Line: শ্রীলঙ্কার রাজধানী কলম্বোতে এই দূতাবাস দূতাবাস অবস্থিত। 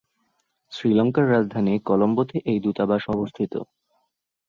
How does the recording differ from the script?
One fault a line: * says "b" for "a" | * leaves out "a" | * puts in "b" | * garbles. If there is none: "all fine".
* leaves out "দূতাবাস"